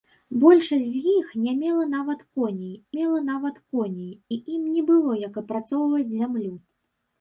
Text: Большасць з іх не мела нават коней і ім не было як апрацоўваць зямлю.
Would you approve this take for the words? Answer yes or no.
no